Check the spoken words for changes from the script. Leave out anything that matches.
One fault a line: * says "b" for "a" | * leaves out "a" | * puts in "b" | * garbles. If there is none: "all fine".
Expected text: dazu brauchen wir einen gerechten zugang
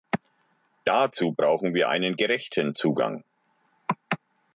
all fine